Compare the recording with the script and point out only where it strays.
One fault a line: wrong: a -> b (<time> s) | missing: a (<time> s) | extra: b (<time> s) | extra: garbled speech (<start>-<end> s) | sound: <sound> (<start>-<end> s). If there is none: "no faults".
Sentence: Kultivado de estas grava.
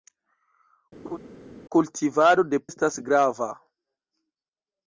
sound: laugh (1.0-1.2 s)